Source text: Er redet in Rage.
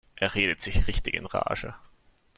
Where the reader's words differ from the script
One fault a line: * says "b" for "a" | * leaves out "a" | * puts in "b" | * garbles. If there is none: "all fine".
* puts in "sich richtig"